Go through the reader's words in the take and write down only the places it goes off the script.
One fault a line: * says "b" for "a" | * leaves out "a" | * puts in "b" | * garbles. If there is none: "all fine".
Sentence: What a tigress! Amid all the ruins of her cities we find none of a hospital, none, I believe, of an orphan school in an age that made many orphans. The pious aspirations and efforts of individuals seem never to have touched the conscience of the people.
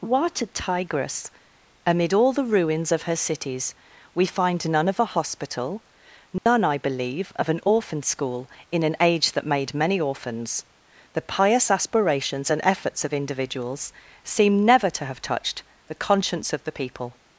all fine